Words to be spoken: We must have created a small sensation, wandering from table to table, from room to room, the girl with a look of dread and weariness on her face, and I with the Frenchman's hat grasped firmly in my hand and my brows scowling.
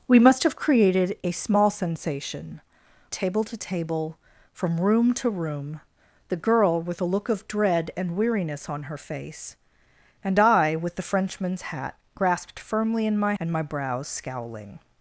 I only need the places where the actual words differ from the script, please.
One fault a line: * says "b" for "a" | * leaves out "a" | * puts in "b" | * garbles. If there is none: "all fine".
* leaves out "wandering from"
* leaves out "hand"